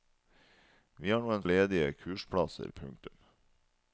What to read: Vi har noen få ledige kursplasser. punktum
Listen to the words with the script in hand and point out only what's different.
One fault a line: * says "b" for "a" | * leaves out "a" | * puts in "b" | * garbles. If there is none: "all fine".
* leaves out "få"